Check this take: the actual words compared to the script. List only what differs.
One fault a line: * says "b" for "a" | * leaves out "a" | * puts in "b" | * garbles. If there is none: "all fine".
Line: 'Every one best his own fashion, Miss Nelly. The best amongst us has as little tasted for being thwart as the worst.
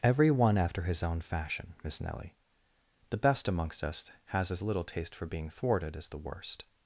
* says "after" for "best"
* says "taste" for "tasted"
* says "thwarted" for "thwart"